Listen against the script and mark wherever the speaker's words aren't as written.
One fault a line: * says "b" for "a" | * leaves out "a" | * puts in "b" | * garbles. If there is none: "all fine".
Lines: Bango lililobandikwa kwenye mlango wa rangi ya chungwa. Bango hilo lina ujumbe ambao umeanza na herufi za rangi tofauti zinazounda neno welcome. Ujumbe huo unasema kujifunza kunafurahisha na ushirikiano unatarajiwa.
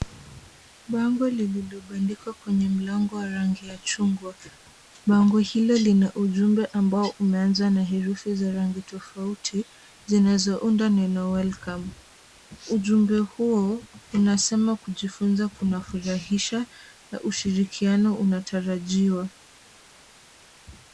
all fine